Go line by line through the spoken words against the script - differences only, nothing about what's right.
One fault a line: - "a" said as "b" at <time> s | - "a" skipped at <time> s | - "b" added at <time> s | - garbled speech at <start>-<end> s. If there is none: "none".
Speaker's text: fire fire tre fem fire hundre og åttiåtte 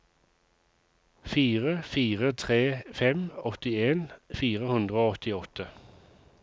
- "åttien" added at 3.5 s